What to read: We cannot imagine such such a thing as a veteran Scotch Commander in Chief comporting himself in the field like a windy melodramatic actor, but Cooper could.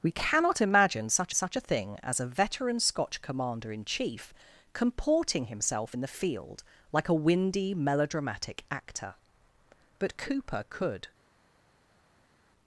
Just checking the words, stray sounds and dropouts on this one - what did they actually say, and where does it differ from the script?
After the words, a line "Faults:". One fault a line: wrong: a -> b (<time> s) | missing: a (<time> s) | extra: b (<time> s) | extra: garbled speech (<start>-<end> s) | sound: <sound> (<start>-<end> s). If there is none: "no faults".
We cannot imagine such such a thing as a veteran Scotch Commander in Chief comporting himself in the field like a windy melodramatic actor, but Cooper could.
Faults:
no faults